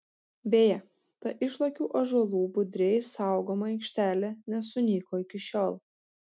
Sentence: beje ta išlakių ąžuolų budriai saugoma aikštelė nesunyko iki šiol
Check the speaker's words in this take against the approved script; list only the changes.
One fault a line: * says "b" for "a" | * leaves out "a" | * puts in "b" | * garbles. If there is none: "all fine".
all fine